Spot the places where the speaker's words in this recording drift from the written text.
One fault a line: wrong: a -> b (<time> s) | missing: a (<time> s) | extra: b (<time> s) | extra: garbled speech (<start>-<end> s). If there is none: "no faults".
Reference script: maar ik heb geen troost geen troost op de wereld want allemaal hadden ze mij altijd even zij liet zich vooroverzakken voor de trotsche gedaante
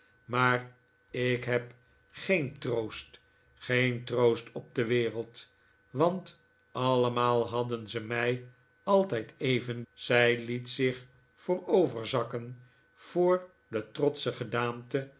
no faults